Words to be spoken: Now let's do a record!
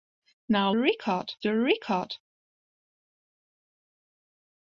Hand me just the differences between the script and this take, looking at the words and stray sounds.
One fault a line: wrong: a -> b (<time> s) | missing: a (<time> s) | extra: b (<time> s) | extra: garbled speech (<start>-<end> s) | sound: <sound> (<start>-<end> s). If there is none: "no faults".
wrong: let's -> record (0.8 s)